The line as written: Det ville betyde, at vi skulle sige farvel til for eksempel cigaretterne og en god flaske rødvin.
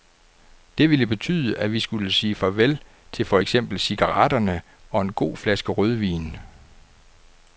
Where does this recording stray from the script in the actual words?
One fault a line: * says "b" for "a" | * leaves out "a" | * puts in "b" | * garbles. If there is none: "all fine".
all fine